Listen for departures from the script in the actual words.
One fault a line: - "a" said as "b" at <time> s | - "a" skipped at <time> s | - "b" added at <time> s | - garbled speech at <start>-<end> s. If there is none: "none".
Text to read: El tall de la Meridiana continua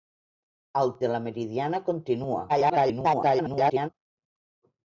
- "tall" skipped at 0.9 s
- garbled speech at 2.5-3.9 s